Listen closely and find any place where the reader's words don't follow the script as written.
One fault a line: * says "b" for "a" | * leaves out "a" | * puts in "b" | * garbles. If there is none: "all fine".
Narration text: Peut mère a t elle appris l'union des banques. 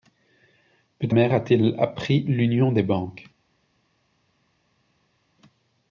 all fine